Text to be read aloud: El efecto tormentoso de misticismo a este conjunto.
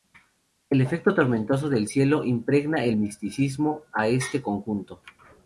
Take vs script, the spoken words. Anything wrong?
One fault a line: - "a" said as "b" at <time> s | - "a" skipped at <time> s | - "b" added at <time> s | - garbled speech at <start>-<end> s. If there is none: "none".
- "del cielo impregna" added at 1.7 s